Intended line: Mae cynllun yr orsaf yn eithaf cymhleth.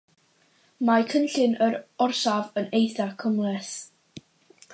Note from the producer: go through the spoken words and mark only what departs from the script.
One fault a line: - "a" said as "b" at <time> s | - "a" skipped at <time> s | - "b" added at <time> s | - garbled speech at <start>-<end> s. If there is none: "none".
none